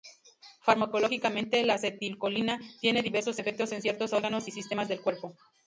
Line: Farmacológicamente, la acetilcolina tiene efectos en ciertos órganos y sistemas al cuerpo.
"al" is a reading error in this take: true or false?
true